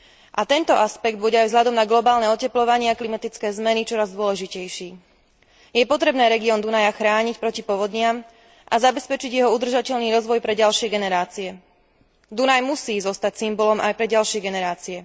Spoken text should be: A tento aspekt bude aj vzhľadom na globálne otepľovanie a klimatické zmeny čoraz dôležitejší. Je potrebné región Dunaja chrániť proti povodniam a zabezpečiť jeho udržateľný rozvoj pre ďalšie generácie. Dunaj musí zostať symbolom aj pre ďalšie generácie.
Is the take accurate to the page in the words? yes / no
yes